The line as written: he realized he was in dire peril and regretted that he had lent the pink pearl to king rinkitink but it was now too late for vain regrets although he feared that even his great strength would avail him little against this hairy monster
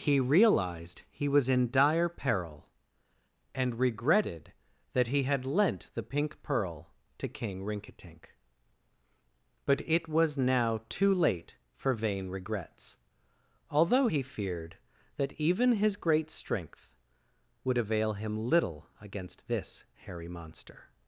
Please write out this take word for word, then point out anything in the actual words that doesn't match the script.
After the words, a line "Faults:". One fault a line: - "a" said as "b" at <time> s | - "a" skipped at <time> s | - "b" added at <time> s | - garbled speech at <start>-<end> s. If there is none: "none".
he realized he was in dire peril and regretted that he had lent the pink pearl to king rinkitink but it was now too late for vain regrets although he feared that even his great strength would avail him little against this hairy monster
Faults:
none